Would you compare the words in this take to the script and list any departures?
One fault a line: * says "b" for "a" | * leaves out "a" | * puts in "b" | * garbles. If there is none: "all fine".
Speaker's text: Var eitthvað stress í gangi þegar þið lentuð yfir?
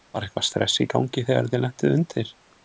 * says "undir" for "yfir"